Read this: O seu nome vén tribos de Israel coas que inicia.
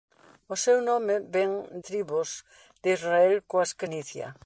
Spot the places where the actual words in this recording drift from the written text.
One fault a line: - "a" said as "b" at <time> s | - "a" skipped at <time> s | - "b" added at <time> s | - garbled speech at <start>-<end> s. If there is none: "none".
none